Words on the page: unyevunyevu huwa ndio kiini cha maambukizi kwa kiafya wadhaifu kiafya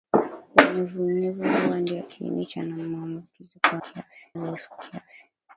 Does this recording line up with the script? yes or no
yes